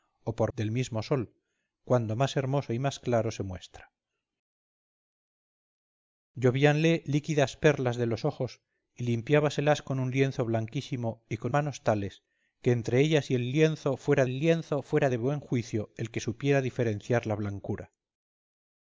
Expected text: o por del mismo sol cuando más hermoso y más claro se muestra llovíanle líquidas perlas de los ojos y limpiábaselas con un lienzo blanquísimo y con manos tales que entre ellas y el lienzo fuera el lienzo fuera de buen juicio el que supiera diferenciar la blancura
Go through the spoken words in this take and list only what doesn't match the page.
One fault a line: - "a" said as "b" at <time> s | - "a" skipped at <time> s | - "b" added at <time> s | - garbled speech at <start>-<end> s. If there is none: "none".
none